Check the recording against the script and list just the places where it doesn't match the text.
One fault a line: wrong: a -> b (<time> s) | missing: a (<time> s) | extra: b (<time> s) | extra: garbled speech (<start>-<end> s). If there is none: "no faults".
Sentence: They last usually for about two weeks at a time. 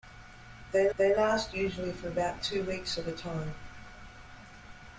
extra: they (1.0 s)